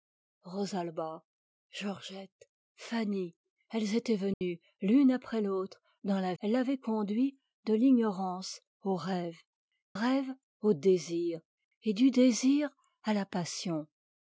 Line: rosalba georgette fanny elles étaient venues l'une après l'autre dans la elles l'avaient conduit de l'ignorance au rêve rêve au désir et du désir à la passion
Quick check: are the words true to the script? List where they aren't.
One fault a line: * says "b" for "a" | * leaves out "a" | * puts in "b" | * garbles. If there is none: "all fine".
all fine